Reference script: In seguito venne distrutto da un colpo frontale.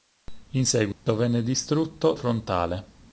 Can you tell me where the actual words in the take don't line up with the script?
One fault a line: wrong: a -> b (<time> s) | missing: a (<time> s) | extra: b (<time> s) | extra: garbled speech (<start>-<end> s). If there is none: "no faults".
missing: da un colpo (2.1 s)